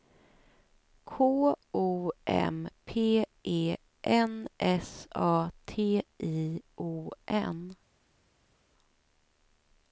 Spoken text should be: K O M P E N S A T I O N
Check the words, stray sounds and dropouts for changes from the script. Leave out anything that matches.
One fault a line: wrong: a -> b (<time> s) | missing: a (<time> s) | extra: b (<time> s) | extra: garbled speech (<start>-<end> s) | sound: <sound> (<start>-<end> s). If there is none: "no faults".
no faults